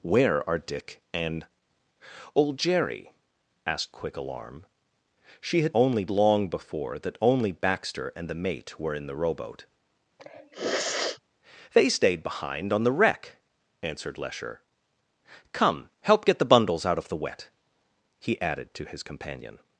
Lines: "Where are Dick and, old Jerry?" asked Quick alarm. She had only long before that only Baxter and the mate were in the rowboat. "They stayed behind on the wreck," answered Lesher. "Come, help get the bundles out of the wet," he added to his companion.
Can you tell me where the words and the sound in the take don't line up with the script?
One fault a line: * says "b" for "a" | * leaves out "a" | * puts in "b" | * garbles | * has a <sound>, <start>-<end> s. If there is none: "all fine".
* has a sniff, 10.2-11.2 s